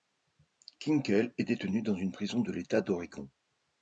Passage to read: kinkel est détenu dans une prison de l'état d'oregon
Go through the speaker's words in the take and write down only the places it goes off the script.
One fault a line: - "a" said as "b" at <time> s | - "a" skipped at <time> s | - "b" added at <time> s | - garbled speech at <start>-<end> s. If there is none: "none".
none